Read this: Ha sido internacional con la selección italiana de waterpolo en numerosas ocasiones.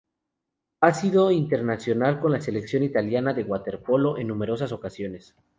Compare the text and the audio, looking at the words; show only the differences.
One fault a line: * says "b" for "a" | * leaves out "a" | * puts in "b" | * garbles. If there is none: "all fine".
all fine